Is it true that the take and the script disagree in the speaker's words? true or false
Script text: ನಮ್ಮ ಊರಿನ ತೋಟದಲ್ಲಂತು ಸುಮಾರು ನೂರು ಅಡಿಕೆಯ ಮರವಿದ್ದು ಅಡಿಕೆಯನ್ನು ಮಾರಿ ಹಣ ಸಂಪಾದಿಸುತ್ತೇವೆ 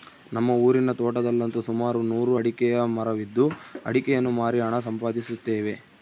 false